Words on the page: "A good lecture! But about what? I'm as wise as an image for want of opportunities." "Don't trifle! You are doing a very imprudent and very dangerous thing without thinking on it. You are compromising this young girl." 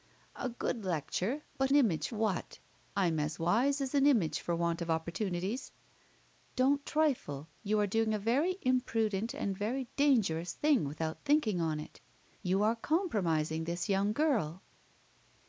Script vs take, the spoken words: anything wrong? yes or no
yes